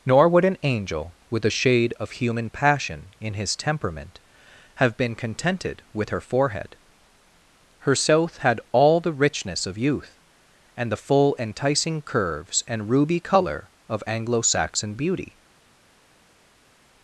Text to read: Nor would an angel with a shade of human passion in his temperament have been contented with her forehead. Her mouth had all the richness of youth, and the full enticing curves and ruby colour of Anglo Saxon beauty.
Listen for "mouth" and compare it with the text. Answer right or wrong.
wrong